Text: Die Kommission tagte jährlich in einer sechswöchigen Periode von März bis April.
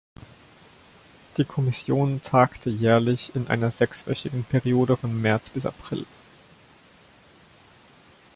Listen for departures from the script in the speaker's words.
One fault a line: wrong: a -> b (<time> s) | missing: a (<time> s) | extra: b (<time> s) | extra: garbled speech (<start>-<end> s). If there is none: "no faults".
no faults